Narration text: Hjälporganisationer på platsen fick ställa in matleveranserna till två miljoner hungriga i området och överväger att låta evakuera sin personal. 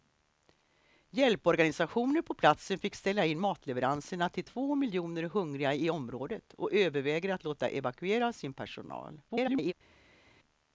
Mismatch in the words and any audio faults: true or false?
true